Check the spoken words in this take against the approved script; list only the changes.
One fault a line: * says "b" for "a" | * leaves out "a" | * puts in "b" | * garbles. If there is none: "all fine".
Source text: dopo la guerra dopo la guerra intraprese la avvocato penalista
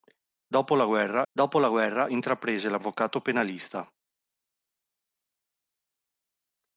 all fine